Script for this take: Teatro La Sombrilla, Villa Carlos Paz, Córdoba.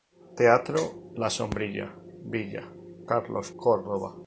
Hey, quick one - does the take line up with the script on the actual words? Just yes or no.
no